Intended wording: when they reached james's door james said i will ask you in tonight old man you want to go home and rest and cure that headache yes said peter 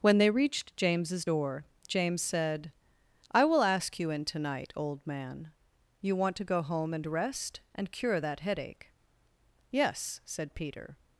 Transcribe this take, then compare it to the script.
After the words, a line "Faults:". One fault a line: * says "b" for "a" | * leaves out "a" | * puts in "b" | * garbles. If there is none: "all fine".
when they reached james's door james said i will ask you in tonight old man you want to go home and rest and cure that headache yes said peter
Faults:
all fine